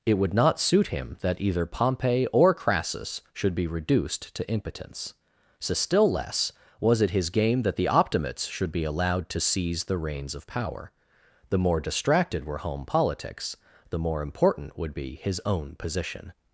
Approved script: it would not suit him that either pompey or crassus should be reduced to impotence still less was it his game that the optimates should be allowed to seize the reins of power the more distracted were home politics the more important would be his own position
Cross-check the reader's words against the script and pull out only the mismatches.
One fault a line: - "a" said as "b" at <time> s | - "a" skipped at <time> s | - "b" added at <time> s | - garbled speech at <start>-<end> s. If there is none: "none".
- "so" added at 5.6 s